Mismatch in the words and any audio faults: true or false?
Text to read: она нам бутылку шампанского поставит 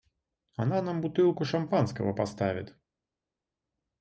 false